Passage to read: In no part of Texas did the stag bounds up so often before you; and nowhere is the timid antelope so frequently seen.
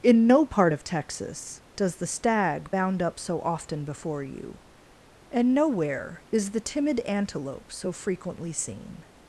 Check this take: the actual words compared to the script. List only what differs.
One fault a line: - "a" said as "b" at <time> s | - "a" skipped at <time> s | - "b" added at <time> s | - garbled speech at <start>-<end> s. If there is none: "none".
- "did" said as "does" at 1.7 s
- "bounds" said as "bound" at 2.7 s